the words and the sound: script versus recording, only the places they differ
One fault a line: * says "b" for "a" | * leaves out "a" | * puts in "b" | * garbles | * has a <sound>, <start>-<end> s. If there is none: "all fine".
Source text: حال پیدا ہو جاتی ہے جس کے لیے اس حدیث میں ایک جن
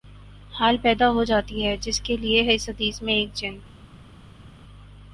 all fine